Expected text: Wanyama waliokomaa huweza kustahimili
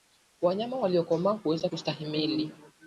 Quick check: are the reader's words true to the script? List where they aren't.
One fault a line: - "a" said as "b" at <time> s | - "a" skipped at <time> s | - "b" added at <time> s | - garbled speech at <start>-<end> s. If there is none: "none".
none